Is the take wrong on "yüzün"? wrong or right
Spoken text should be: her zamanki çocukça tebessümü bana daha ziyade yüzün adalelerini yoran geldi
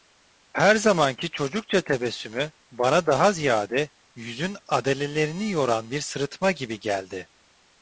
right